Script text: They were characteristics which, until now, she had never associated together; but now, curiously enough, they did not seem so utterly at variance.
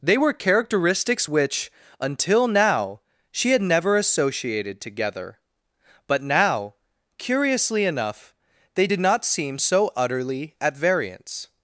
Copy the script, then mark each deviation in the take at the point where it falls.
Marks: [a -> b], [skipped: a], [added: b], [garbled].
They were characteristics which, until now, she had never associated together; but now, curiously enough, they did not seem so utterly at variance.